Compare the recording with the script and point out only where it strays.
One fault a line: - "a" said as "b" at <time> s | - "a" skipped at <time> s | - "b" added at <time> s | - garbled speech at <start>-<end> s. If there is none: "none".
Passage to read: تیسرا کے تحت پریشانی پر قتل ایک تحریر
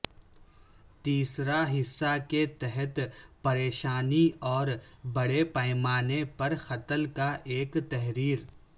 - "حصہ" added at 1.7 s
- "اور بڑے پیمانے" added at 4.5 s
- "کا" added at 7.1 s